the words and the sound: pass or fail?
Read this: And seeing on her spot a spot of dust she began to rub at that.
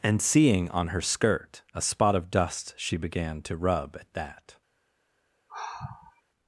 fail